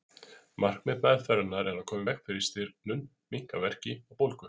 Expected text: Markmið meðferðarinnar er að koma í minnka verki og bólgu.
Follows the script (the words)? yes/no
no